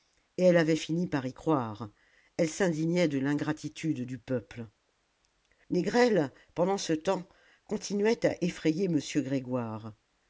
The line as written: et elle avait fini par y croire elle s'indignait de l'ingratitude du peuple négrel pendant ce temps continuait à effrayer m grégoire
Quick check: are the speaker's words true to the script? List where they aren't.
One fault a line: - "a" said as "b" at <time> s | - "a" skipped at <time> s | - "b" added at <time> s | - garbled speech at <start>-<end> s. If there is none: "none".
none